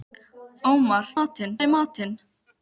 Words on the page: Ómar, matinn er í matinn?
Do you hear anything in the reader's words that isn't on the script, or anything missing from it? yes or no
no